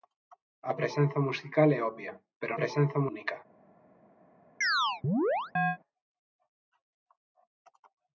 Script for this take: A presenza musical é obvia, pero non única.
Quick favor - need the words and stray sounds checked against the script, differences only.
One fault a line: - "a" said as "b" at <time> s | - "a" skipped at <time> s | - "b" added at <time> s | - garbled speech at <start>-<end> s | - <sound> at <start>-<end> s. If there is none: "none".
- "non" said as "presenza" at 2.6 s
- chirp at 4.6-5.8 s